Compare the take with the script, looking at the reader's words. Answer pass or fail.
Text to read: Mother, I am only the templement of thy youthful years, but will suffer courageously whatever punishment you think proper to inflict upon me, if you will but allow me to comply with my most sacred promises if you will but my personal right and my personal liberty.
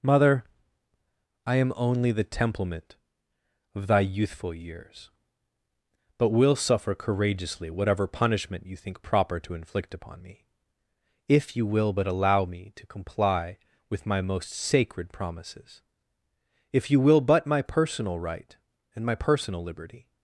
pass